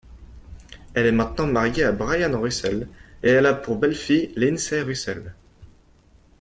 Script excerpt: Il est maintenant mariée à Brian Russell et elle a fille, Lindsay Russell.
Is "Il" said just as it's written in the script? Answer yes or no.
no